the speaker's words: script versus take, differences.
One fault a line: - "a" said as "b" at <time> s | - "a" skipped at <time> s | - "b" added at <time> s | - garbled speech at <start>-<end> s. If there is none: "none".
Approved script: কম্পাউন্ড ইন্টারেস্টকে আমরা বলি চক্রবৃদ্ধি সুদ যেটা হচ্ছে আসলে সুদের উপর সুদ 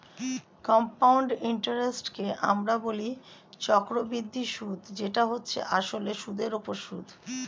none